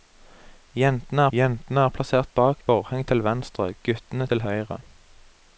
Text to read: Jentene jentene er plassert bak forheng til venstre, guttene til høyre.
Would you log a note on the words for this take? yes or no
no